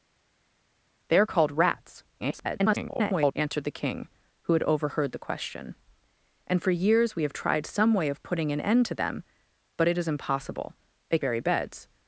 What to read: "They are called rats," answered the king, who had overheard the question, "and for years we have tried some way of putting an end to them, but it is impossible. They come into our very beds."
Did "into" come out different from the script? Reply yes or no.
yes